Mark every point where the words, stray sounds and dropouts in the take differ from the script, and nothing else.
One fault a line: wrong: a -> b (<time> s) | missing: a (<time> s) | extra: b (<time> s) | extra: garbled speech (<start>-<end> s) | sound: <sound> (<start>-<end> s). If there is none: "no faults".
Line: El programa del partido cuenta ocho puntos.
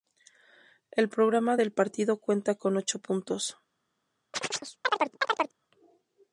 extra: con (2.5 s)
sound: chirp (4.3-5.6 s)